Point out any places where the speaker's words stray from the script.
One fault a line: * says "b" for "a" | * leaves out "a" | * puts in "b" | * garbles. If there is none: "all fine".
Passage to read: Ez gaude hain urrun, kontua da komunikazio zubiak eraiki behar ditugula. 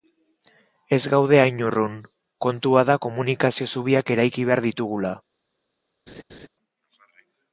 all fine